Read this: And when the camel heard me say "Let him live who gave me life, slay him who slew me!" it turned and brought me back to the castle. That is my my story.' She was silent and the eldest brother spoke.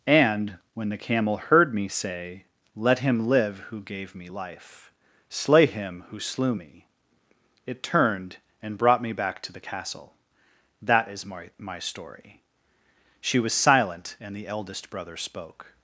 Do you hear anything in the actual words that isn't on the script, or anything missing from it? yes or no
no